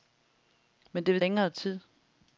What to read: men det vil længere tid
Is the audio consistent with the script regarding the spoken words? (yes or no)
yes